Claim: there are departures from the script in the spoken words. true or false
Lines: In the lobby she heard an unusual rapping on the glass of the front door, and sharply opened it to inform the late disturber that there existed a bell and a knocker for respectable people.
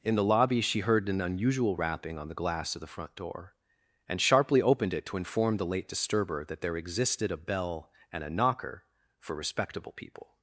false